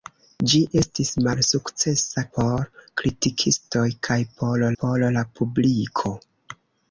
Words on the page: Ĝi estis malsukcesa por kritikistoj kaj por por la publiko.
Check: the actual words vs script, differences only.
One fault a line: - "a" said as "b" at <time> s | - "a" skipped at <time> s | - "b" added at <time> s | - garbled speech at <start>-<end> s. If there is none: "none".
none